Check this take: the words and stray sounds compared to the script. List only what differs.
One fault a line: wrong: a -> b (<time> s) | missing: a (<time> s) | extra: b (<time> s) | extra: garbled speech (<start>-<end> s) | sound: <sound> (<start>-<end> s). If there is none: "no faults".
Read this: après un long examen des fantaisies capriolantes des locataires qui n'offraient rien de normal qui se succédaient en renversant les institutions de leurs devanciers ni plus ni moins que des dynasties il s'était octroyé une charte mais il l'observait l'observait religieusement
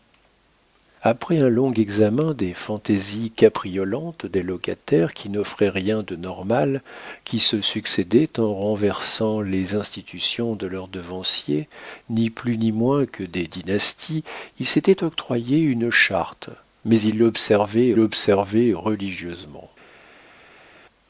no faults